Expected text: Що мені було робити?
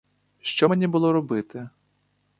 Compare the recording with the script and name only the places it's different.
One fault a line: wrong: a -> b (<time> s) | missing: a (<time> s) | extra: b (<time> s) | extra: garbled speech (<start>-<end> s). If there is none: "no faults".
no faults